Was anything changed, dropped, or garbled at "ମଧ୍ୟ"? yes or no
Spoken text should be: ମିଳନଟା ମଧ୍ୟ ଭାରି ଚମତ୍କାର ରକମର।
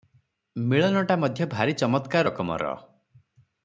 no